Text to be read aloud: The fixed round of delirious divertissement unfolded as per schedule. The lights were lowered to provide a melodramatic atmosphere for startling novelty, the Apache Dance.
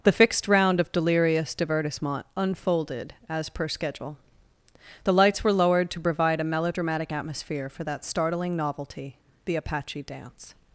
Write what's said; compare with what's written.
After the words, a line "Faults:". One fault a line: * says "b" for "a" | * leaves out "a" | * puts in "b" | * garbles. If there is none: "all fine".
The fixed round of delirious divertissement unfolded as per schedule. The lights were lowered to provide a melodramatic atmosphere for that startling novelty, the Apache Dance.
Faults:
* puts in "that"